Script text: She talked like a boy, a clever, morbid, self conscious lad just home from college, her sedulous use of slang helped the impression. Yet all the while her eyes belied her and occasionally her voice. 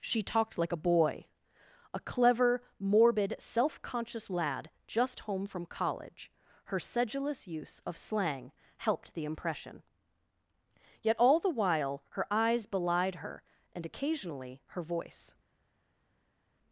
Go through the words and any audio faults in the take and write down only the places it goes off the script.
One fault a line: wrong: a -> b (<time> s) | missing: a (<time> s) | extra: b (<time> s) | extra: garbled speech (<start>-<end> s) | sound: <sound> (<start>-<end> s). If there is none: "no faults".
no faults